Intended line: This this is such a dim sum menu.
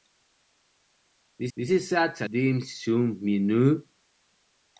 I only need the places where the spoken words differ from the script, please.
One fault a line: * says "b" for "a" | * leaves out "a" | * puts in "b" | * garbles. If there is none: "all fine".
all fine